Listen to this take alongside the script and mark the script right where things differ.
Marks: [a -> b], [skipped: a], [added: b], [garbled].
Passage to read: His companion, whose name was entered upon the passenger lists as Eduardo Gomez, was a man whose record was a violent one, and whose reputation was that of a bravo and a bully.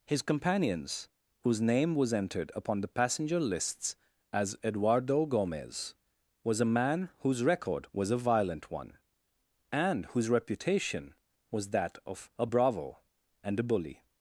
His [companion, -> companions] whose name was entered upon the passenger lists as Eduardo Gomez, was a man whose record was a violent one, and whose reputation was that of a bravo and a bully.